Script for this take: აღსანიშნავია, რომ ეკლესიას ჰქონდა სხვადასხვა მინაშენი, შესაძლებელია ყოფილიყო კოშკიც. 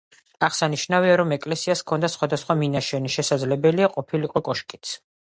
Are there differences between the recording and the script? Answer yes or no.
no